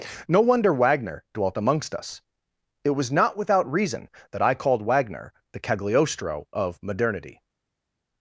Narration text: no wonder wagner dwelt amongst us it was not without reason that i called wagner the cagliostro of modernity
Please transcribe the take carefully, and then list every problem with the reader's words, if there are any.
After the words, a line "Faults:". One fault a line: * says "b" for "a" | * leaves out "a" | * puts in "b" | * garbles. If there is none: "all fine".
no wonder wagner dwelt amongst us it was not without reason that i called wagner the cagliostro of modernity
Faults:
all fine